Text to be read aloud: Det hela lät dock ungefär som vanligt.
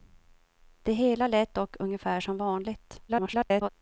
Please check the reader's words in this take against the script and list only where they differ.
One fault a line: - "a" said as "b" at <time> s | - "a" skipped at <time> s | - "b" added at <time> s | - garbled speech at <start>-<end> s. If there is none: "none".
- garbled speech at 3.1-3.7 s